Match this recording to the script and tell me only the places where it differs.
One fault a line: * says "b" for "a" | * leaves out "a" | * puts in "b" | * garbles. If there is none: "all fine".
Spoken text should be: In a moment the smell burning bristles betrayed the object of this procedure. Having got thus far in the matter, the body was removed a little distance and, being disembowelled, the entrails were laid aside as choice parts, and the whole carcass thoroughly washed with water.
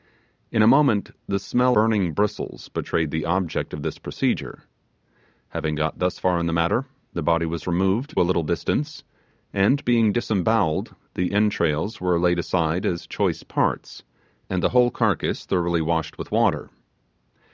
all fine